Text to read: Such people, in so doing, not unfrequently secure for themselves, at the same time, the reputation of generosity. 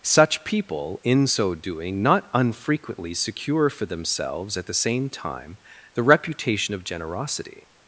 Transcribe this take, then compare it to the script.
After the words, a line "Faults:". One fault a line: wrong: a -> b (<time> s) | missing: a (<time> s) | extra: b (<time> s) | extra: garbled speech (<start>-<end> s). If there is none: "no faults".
Such people, in so doing, not unfrequently secure for themselves, at the same time, the reputation of generosity.
Faults:
no faults